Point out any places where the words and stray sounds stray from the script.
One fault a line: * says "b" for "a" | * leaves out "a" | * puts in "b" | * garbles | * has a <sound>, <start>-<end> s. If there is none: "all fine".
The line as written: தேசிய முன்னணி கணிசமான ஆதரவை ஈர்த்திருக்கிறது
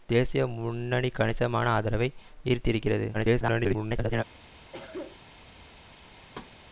* garbles
* has a cough, 4.7-5.2 s
* has a thud, 6.3-6.6 s